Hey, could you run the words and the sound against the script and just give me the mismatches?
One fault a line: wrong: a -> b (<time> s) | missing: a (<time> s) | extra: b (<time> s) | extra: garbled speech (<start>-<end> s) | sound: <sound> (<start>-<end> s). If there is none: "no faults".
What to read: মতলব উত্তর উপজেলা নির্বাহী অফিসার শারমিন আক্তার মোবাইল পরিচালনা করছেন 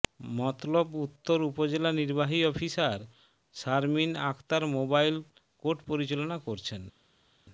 extra: কোর্ট (5.6 s)